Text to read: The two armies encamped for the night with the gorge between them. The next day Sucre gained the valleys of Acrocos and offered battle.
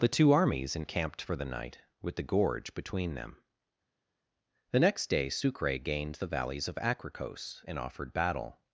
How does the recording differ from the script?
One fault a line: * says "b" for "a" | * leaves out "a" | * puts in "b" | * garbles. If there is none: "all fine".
all fine